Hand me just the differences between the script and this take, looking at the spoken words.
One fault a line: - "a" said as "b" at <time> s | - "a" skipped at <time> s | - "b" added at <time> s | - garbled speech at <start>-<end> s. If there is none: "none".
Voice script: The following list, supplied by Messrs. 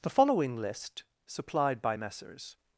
none